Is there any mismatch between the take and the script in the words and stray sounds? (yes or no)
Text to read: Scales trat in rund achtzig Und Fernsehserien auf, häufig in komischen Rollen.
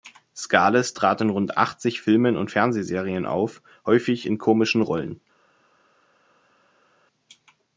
yes